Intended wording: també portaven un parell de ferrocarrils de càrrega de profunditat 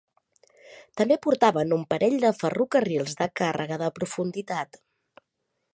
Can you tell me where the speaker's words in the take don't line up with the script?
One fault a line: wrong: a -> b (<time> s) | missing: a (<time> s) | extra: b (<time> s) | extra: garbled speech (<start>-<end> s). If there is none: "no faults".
no faults